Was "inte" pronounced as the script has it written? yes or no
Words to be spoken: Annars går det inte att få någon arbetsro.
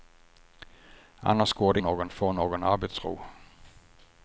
no